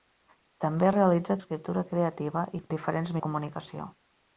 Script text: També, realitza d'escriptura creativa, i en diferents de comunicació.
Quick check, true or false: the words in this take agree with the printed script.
true